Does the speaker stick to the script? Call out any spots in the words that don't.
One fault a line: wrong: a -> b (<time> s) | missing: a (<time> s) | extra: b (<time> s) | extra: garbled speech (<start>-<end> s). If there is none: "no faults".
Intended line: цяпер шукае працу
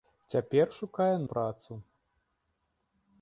no faults